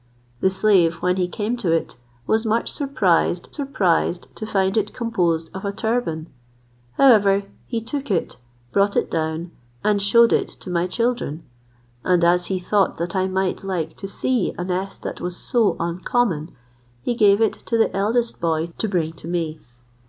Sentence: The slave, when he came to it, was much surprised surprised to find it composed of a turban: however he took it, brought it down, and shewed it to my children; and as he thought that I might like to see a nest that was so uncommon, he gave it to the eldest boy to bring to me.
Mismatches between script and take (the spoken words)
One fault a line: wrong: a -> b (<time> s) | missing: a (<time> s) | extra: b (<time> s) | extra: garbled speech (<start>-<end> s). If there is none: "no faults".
no faults